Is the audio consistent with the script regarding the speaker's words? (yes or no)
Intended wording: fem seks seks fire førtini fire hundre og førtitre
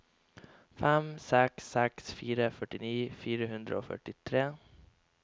yes